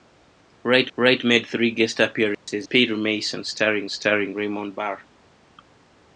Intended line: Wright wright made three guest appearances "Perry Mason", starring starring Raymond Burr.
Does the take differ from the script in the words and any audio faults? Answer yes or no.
yes